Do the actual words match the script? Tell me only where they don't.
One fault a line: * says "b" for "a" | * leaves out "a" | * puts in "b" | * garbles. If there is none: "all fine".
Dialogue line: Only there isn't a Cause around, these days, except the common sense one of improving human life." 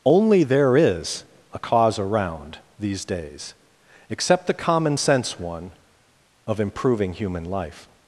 * says "is" for "isn't"